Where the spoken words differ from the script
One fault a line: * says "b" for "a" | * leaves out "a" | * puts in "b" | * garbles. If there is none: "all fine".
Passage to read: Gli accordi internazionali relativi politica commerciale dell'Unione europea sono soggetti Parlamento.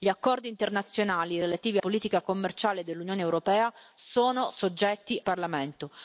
all fine